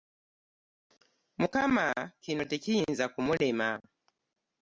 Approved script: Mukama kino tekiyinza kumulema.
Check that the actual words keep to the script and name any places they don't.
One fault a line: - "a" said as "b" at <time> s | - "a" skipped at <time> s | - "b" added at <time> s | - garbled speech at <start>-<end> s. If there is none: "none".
none